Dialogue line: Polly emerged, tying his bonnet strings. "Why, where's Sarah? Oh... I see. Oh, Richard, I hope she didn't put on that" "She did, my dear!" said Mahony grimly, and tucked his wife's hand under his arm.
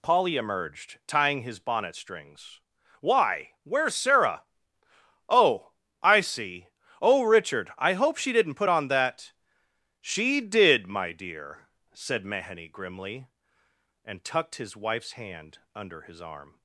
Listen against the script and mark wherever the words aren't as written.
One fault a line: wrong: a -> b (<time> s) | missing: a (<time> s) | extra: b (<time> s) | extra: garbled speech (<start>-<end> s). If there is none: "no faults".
no faults